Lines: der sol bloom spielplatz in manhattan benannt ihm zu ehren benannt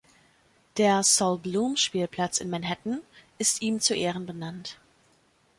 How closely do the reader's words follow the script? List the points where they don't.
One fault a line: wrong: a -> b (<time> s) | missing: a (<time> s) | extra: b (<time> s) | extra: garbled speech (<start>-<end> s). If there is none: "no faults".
wrong: benannt -> ist (3.4 s)